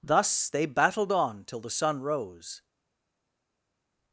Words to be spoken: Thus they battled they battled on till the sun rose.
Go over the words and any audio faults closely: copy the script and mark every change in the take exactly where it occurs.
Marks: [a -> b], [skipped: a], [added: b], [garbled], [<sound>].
Thus they battled [skipped: they battled] on till the sun rose.